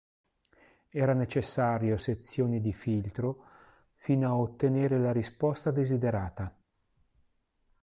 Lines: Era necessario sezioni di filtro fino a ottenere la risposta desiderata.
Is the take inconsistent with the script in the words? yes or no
no